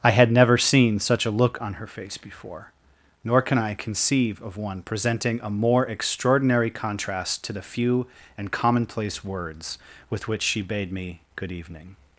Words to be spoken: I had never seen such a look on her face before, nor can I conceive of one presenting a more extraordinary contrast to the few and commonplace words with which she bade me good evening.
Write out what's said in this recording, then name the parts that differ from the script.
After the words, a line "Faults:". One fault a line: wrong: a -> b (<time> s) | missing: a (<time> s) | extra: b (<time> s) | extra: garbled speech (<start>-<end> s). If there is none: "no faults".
I had never seen such a look on her face before, nor can I conceive of one presenting a more extraordinary contrast to the few and commonplace words with which she bade me good evening.
Faults:
no faults